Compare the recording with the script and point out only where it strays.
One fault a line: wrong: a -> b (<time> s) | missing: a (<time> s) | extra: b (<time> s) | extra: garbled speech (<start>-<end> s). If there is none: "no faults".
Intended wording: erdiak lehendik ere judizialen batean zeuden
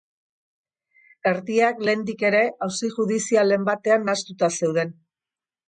extra: auzi (2.7 s)
extra: nahastuta (4.1 s)